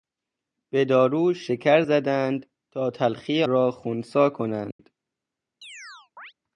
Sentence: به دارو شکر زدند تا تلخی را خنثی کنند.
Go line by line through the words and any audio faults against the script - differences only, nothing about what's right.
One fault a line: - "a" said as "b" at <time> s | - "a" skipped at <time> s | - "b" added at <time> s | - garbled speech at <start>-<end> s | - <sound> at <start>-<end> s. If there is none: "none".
- dropout at 4.7-4.8 s
- chirp at 5.6-6.3 s